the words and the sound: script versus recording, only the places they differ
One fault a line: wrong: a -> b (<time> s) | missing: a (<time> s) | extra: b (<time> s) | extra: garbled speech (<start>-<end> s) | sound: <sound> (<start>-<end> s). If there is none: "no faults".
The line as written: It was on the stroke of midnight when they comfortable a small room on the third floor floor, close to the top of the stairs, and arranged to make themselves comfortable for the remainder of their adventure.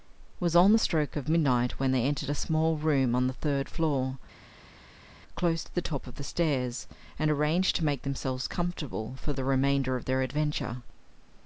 wrong: comfortable -> entered (2.0 s)
missing: floor (4.2 s)